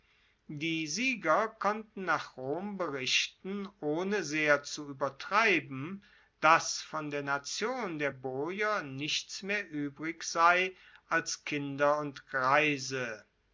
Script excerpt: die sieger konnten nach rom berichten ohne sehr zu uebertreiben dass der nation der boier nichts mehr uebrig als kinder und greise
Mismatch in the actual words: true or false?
true